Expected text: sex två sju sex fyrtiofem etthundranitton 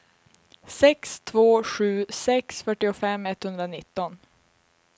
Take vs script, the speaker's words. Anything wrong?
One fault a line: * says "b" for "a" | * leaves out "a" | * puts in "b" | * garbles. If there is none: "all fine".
all fine